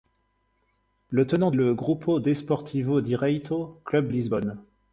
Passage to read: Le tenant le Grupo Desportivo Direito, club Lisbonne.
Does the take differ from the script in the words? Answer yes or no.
no